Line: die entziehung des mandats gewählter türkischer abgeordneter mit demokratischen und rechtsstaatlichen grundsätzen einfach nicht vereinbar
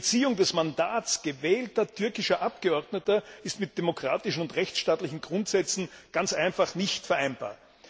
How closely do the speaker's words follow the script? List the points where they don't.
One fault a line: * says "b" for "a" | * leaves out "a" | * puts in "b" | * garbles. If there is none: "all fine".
* puts in "ist"
* puts in "ganz"